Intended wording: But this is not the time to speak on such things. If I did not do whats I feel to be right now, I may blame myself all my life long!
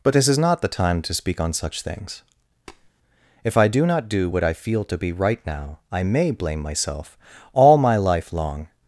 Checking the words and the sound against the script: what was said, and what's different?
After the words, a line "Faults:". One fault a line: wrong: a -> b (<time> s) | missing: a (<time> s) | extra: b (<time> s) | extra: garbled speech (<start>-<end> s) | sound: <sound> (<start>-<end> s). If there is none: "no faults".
But this is not the time to speak on such things. If I do not do what I feel to be right now, I may blame myself all my life long!
Faults:
sound: tap (2.7-2.9 s)
wrong: did -> do (3.7 s)
wrong: whats -> what (4.3 s)